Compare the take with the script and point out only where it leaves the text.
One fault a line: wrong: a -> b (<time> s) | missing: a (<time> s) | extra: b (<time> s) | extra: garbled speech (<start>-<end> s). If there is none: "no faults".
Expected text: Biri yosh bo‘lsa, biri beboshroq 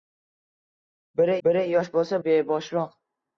extra: biri (1.5 s)
missing: biri (2.2 s)